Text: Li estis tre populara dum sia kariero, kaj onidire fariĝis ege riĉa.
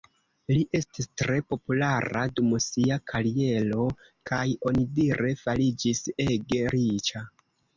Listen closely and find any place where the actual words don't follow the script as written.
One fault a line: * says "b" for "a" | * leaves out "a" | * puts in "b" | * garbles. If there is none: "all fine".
all fine